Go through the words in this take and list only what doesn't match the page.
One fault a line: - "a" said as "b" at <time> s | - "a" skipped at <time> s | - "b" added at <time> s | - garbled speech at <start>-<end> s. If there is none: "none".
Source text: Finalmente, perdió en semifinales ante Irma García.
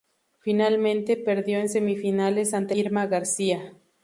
none